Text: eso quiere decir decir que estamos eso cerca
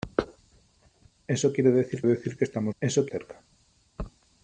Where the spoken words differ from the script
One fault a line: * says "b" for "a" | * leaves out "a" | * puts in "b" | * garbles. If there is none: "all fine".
all fine